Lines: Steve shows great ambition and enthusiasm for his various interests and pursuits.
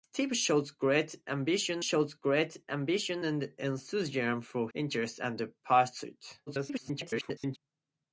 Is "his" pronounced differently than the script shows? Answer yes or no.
yes